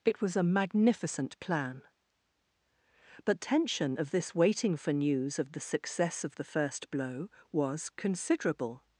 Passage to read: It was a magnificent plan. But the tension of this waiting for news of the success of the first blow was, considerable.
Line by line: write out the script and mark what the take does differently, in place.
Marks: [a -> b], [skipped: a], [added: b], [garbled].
It was a magnificent plan. But [skipped: the] tension of this waiting for news of the success of the first blow was, considerable.